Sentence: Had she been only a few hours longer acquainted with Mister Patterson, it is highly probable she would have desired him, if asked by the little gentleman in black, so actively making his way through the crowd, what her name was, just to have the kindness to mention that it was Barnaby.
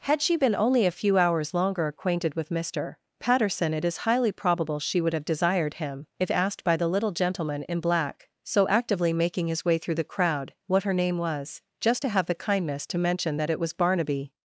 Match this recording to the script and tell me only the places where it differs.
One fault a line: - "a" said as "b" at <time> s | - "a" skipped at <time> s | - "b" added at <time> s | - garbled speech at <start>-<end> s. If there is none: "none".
none